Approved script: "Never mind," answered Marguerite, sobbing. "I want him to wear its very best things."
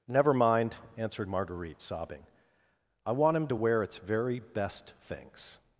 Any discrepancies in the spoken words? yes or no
no